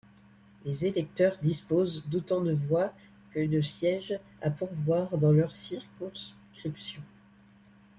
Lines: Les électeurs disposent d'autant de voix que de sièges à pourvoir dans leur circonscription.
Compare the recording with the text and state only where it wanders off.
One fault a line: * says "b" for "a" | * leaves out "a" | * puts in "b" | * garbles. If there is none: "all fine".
all fine